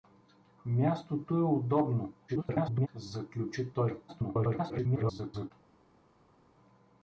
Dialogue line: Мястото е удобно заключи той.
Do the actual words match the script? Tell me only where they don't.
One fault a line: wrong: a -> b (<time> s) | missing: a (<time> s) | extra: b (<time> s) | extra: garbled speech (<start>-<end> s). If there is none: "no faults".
extra: garbled speech (2.3-2.9 s)
extra: garbled speech (4.1-5.5 s)